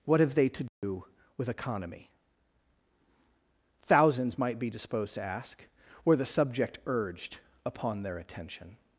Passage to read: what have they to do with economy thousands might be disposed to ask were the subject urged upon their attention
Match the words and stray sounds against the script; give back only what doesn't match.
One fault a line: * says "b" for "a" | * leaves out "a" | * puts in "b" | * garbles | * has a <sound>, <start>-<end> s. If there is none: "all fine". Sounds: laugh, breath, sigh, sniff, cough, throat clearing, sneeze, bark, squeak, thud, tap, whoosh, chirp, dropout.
* has a dropout, 0.7-0.8 s